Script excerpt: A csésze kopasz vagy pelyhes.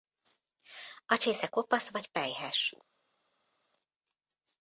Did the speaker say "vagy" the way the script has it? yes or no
yes